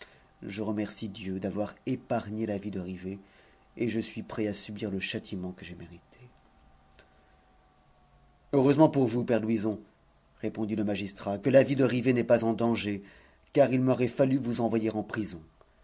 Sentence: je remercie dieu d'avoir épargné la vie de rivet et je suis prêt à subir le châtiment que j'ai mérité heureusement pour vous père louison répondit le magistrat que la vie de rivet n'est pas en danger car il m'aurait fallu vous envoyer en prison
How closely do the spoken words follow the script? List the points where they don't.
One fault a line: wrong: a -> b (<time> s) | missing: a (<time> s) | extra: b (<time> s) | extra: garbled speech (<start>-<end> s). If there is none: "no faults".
no faults